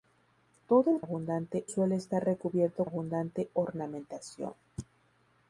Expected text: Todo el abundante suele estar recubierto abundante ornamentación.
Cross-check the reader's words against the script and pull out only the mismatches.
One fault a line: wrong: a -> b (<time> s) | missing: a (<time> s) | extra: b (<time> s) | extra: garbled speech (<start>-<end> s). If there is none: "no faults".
no faults